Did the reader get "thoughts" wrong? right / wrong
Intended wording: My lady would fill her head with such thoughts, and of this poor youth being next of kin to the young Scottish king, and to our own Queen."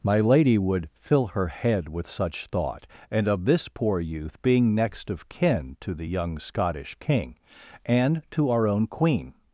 wrong